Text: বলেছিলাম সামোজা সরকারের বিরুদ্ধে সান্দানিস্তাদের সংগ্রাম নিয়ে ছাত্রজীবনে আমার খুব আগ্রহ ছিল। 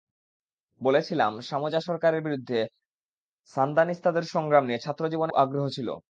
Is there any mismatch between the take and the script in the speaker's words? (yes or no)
yes